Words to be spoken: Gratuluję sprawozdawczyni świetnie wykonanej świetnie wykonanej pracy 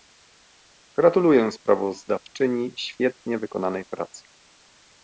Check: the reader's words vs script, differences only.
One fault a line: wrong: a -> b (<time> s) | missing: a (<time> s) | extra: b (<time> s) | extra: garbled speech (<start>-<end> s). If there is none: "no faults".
missing: świetnie wykonanej (3.8 s)